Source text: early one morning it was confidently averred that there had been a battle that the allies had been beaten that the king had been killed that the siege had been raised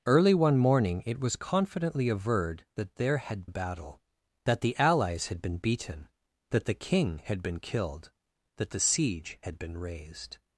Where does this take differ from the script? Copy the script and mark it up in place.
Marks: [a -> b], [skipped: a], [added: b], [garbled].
early one morning it was confidently averred that there had [skipped: been] a battle that the allies had been beaten that the king had been killed that the siege had been raised